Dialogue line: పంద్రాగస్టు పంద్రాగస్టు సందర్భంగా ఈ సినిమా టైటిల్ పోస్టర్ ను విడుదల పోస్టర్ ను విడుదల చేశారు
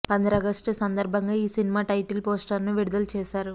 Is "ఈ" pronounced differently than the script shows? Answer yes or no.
no